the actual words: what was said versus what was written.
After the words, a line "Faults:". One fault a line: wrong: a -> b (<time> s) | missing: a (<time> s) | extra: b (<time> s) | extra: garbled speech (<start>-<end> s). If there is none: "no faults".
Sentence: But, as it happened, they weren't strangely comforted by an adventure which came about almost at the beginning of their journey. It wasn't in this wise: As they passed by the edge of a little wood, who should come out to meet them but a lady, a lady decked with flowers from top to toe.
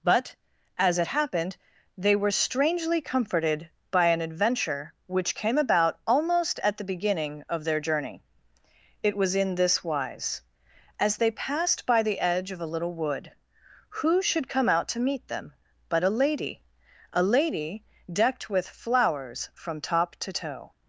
But, as it happened, they were strangely comforted by an adventure which came about almost at the beginning of their journey. It was in this wise: As they passed by the edge of a little wood, who should come out to meet them but a lady, a lady decked with flowers from top to toe.
Faults:
wrong: weren't -> were (2.1 s)
wrong: wasn't -> was (9.2 s)